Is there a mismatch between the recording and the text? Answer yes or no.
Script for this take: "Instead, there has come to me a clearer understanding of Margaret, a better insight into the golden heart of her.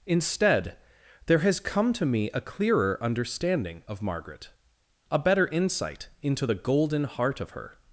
no